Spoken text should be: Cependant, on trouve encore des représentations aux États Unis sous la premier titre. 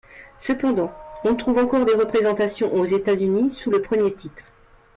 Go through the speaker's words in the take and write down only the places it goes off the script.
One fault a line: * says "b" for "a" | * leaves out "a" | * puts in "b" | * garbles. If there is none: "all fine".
* says "le" for "la"